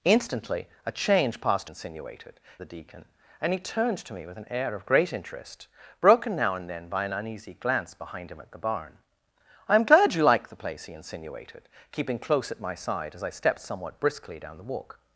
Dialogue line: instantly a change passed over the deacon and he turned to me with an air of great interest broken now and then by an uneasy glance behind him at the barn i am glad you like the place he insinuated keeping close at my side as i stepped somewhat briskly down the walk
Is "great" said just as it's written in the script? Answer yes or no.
yes